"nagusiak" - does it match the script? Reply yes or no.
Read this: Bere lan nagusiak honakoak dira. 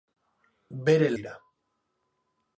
no